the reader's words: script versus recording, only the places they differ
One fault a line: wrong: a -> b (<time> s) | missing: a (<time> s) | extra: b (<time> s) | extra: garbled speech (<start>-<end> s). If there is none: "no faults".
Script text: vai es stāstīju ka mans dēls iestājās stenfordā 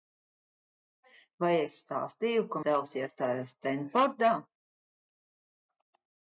missing: mans (2.6 s)